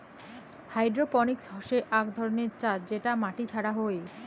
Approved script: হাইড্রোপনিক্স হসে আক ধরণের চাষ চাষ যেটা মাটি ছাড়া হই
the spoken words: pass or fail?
fail